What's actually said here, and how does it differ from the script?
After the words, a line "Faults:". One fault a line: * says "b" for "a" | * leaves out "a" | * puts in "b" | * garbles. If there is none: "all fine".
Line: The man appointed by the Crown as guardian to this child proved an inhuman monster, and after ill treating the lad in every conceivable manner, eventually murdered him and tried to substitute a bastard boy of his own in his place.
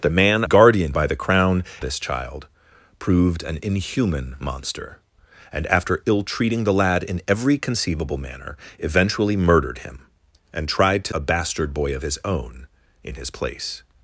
The man guardian by the Crown this child proved an inhuman monster, and after ill treating the lad in every conceivable manner, eventually murdered him and tried to a bastard boy of his own in his place.
Faults:
* says "guardian" for "appointed"
* leaves out "as guardian to"
* leaves out "substitute"